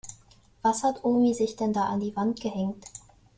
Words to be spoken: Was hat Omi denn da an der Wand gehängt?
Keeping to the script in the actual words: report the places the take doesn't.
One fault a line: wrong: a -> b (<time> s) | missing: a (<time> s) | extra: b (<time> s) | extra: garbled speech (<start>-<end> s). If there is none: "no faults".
extra: sich (1.4 s)
wrong: der -> die (2.0 s)